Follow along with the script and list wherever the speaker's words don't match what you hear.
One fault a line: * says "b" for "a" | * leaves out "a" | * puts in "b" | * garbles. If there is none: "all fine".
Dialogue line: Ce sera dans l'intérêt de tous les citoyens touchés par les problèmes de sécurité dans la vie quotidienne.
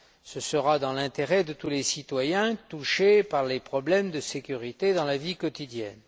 all fine